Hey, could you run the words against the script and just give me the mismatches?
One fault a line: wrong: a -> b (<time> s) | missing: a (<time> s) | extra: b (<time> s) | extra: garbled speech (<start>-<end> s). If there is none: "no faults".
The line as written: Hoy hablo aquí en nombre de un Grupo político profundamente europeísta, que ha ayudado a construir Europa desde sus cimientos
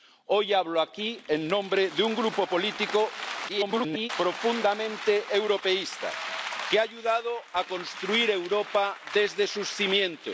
extra: garbled speech (3.5-4.1 s)